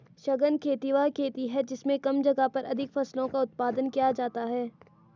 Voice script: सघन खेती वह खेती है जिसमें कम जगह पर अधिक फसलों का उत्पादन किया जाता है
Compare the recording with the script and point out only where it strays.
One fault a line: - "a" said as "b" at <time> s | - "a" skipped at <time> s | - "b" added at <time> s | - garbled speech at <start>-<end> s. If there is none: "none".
none